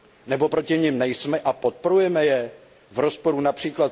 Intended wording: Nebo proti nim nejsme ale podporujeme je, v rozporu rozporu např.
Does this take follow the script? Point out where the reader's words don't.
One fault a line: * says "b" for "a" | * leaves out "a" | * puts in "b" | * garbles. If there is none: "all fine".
* says "a" for "ale"
* leaves out "rozporu"